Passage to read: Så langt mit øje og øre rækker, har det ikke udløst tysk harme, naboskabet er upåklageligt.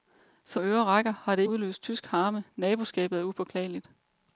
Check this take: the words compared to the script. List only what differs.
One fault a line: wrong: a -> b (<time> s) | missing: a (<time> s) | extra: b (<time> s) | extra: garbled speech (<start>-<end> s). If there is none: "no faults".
missing: langt mit øje (0.6 s)
missing: ikke (1.4 s)